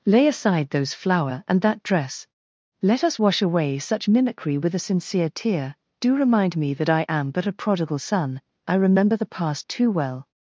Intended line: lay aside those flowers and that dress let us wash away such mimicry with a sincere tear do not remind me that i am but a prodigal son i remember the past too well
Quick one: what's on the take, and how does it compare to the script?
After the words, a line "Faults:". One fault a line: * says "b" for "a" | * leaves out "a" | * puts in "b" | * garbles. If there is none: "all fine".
lay aside those flower and that dress let us wash away such mimicry with a sincere tear do remind me that i am but a prodigal son i remember the past too well
Faults:
* says "flower" for "flowers"
* leaves out "not"